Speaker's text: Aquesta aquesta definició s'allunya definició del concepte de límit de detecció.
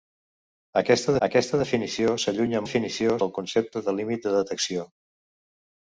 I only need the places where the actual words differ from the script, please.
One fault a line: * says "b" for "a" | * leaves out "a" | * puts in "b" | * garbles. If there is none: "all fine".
all fine